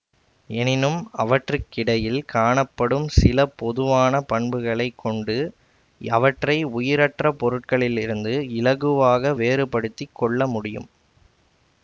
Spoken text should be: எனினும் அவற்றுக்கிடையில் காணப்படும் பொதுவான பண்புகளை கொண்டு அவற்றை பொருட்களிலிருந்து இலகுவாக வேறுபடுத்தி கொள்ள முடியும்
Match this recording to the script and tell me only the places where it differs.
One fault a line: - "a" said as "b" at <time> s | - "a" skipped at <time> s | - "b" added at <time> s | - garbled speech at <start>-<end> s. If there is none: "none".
- "சில" added at 3.1 s
- "உயிரற்ற" added at 6.7 s